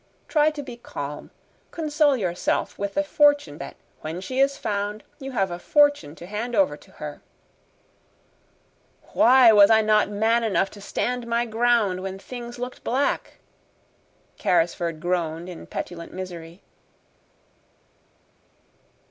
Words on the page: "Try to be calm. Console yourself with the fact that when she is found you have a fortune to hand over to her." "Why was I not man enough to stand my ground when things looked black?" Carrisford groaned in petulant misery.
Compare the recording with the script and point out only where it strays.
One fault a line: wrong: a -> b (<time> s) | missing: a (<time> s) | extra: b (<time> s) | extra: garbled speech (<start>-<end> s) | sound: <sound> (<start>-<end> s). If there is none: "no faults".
wrong: fact -> fortune (3.0 s)